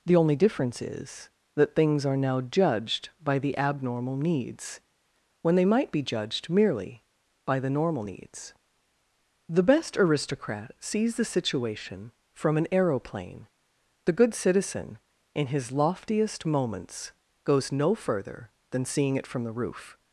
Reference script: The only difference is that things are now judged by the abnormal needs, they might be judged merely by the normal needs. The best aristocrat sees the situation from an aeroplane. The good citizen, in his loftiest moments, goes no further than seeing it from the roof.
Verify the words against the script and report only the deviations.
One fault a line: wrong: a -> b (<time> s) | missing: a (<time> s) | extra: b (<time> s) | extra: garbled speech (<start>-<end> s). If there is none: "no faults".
extra: when (5.4 s)